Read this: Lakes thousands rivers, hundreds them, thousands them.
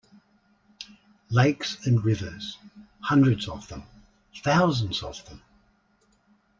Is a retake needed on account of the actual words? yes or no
yes